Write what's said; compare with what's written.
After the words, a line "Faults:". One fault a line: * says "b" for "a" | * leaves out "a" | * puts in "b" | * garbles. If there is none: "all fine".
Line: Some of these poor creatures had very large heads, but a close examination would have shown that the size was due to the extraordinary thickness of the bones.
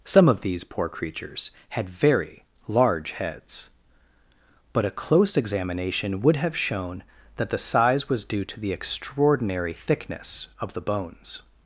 Some of these poor creatures had very large heads, but a close examination would have shown that the size was due to the extraordinary thickness of the bones.
Faults:
all fine